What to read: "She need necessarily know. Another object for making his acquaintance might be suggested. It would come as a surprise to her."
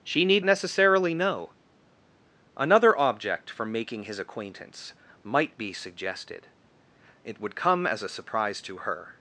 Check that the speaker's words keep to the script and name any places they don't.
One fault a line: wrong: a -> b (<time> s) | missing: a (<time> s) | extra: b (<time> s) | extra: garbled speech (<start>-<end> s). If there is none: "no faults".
no faults